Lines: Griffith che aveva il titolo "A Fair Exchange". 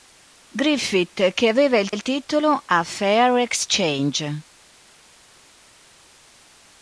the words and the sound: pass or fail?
fail